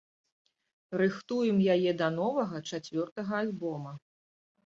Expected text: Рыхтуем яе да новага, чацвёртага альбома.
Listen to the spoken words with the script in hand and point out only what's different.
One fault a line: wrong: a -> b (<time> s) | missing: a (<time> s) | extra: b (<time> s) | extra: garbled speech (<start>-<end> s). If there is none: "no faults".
no faults